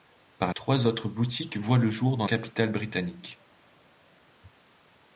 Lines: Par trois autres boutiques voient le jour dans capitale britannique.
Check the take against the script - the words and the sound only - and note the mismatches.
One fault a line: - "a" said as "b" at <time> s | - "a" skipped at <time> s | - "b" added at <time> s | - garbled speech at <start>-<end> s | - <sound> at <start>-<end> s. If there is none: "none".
none